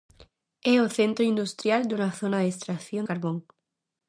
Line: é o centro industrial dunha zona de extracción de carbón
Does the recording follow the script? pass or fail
fail